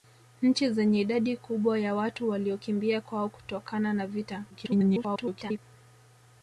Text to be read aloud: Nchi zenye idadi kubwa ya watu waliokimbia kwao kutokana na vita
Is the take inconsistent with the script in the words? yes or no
yes